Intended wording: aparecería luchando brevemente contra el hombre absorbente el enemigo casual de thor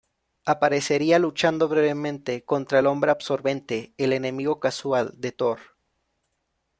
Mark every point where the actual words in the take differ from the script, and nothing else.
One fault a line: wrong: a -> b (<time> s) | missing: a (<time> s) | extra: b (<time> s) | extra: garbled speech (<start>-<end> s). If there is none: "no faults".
no faults